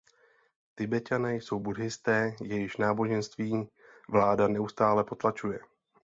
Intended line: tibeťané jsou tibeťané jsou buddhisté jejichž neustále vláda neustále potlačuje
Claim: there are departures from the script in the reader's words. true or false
true